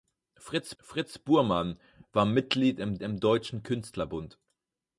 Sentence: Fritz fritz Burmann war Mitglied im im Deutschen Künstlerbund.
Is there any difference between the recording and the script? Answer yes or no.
no